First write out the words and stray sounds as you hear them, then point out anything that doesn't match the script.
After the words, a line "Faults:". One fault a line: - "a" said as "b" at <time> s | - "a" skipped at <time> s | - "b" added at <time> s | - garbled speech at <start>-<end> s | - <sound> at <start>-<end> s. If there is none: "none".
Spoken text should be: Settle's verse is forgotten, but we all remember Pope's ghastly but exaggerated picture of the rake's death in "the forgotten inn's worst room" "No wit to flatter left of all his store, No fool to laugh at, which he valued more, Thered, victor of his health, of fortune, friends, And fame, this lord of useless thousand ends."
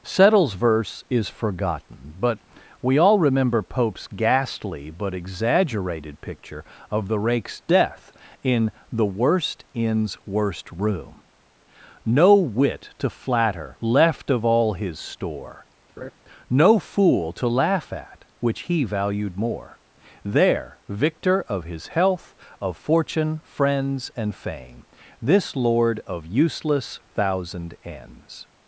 Settle's verse is forgotten, but we all remember Pope's ghastly but exaggerated picture of the rake's death in "the worst inn's worst room" "No wit to flatter left of all his store, No fool to laugh at, which he valued more, There, victor of his health, of fortune, friends, And fame, this lord of useless thousand ends."
Faults:
- "forgotten" said as "worst" at 9.1 s
- laugh at 16.0-16.1 s
- "Thered" said as "There" at 20.2 s